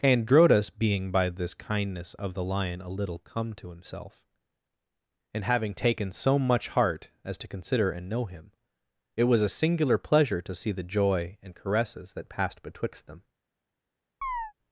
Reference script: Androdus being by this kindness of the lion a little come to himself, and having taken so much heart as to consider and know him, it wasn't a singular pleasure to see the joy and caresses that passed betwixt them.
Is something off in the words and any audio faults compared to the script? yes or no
yes